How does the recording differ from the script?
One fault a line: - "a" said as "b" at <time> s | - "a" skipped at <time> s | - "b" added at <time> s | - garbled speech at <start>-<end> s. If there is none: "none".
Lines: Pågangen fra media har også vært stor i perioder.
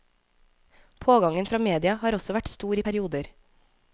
none